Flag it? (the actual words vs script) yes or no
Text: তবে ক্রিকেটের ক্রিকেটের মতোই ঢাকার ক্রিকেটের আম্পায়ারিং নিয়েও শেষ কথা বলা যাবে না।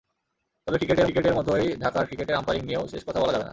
no